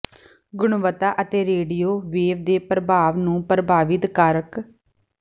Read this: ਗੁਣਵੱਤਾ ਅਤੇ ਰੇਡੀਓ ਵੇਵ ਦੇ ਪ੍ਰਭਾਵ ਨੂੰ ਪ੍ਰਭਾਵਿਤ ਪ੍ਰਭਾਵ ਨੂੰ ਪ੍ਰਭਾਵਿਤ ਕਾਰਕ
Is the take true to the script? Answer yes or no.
no